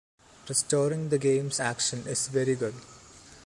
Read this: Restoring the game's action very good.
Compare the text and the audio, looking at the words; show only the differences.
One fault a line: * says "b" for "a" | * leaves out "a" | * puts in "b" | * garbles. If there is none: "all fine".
* puts in "is"